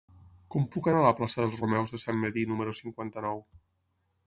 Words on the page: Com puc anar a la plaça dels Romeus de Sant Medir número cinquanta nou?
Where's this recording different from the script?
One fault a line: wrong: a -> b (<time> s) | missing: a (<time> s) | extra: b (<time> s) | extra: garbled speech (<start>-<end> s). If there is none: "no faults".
no faults